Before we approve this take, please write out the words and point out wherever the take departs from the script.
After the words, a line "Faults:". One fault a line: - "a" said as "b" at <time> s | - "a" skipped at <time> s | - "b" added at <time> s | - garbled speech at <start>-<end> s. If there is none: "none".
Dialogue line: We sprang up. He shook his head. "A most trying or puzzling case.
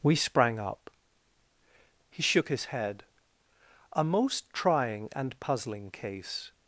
We sprang up. He shook his head. "A most trying and puzzling case.
Faults:
- "or" said as "and" at 5.1 s